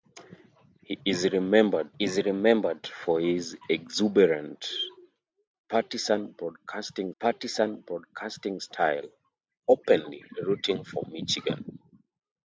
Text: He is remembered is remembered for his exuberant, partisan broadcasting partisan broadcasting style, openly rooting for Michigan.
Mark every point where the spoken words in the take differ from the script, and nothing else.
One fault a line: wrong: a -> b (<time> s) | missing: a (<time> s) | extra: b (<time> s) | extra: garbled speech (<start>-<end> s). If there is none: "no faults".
no faults